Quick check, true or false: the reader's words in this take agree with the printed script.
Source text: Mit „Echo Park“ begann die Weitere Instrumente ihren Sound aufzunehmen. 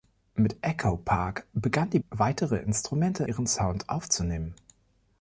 true